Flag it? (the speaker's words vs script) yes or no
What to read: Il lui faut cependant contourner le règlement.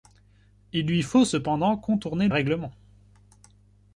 yes